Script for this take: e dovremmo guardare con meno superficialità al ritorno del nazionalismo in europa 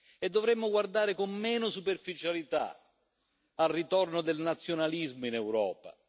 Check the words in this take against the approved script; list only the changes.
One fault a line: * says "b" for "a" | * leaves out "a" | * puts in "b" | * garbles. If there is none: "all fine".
all fine